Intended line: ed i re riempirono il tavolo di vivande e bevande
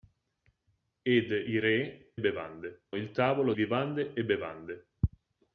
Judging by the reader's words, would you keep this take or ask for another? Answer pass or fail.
fail